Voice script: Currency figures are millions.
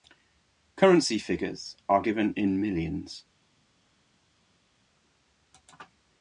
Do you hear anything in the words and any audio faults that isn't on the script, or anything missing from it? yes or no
yes